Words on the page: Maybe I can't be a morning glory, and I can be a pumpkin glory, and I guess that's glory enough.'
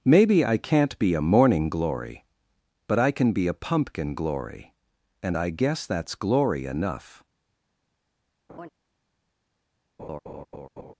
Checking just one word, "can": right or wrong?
right